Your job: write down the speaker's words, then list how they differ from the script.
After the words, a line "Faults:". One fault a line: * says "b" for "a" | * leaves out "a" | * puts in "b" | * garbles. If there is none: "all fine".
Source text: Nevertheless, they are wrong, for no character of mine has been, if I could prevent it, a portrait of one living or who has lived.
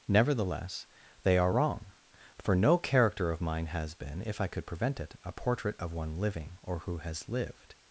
Nevertheless, they are wrong, for no character of mine has been, if I could prevent it, a portrait of one living or who has lived.
Faults:
all fine